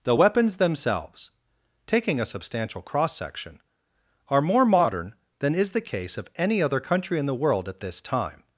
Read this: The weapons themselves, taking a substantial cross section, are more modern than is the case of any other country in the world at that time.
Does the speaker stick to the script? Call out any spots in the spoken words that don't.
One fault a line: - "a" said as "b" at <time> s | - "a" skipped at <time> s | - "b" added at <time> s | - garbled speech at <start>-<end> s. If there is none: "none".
- "that" said as "this" at 7.8 s